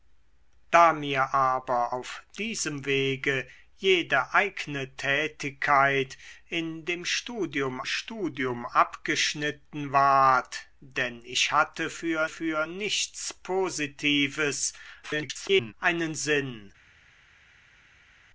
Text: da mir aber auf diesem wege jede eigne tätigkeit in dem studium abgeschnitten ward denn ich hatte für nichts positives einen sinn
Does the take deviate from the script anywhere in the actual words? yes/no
yes